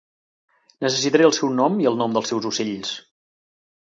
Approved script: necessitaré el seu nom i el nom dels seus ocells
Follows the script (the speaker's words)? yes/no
yes